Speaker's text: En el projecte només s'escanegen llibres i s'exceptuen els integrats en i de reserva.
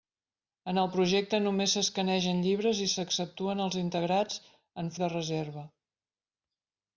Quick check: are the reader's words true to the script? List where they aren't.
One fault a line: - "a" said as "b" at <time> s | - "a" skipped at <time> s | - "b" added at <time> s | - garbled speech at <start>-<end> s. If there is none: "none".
none